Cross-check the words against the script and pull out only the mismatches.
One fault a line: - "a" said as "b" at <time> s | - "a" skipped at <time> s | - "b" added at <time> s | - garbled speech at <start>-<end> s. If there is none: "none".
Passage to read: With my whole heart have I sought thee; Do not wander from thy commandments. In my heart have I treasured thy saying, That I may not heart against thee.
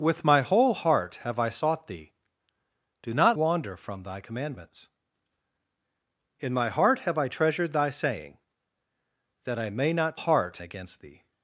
none